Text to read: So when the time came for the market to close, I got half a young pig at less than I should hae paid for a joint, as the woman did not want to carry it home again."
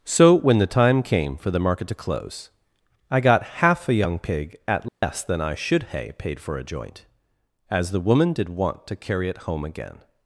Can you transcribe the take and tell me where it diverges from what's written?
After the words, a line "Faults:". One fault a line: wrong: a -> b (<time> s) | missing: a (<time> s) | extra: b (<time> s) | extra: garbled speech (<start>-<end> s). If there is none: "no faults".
So when the time came for the market to close, I got half a young pig at less than I should hae paid for a joint, as the woman did want to carry it home again."
Faults:
missing: not (8.5 s)